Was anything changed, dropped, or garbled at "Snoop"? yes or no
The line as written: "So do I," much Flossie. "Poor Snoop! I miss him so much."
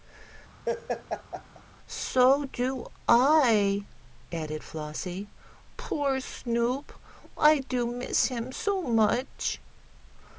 no